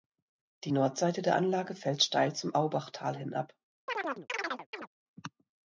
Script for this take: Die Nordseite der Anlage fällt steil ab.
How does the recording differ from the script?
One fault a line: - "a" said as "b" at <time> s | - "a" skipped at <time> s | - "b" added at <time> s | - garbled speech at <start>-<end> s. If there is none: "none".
- "zum Aubachtal hin" added at 2.3 s